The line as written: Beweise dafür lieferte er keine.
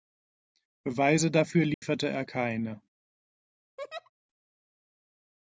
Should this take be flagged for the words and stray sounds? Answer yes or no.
yes